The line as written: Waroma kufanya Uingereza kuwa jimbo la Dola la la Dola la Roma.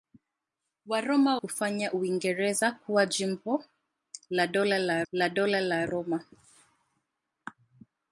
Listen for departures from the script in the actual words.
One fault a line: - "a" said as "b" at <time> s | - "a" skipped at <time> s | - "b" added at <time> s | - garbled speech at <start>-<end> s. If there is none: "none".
none